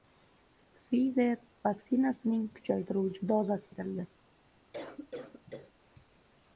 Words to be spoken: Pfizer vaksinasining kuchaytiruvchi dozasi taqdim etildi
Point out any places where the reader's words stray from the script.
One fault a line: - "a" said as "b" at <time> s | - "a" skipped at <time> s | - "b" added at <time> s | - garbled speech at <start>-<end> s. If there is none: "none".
- "taqdim" skipped at 3.7 s